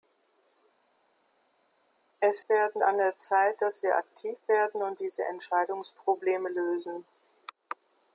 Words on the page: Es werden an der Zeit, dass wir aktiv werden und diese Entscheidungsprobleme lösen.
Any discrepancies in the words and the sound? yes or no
no